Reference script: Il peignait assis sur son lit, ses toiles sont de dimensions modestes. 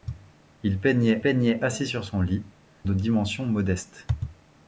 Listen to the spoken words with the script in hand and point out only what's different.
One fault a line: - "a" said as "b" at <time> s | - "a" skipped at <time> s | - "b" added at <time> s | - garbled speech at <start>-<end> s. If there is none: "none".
- "peignait" added at 1.2 s
- "ses toiles sont" skipped at 2.4 s